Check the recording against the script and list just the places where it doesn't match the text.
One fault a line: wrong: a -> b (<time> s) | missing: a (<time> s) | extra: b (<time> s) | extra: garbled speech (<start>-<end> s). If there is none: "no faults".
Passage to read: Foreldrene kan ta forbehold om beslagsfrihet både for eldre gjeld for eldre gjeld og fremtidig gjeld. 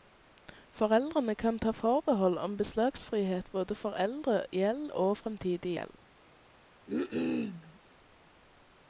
missing: for eldre gjeld (4.9 s)